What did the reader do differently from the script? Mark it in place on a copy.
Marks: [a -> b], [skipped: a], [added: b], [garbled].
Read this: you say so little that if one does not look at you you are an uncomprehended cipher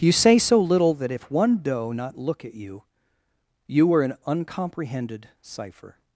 you say so little that if one [does -> doe] not look at you you [are -> were] an uncomprehended cipher